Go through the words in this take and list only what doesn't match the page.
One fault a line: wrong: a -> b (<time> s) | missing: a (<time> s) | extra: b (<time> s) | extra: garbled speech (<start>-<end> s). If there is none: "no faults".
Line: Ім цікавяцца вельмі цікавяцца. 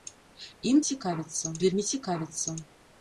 no faults